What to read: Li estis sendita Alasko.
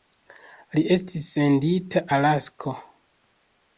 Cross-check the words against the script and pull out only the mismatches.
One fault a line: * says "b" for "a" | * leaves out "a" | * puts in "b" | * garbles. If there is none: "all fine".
all fine